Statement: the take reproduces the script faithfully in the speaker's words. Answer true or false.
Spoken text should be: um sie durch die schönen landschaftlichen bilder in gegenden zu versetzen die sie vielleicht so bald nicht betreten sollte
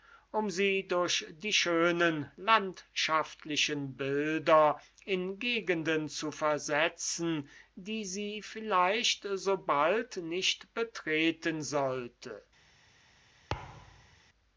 true